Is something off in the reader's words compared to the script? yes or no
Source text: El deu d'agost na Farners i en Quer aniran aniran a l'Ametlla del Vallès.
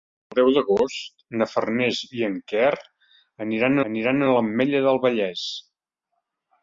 no